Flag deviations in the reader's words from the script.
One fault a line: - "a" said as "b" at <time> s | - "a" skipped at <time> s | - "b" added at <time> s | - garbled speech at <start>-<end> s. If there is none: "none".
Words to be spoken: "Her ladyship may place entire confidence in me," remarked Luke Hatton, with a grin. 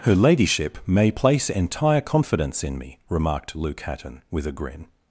none